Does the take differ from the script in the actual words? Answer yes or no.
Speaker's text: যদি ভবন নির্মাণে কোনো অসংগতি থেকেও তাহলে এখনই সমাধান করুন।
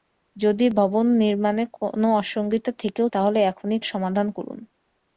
no